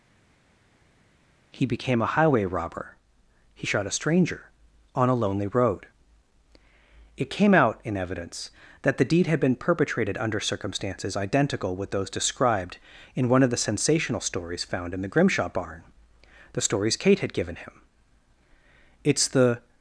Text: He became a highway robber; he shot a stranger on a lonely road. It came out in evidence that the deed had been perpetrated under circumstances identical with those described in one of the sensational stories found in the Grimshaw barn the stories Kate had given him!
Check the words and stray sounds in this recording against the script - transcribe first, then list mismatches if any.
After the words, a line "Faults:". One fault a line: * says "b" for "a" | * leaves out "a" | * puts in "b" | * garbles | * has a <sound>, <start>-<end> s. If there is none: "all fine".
He became a highway robber; he shot a stranger on a lonely road. It came out in evidence that the deed had been perpetrated under circumstances identical with those described in one of the sensational stories found in the Grimshaw barn the stories Kate had given him! 'It's the
Faults:
* puts in "It's the"